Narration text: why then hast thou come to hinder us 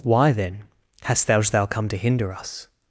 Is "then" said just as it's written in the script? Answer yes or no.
yes